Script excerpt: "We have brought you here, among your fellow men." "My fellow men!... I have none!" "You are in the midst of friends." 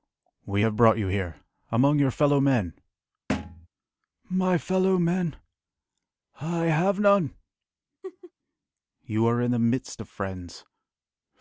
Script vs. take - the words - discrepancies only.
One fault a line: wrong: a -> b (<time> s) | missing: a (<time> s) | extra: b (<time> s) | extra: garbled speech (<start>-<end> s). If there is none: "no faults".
no faults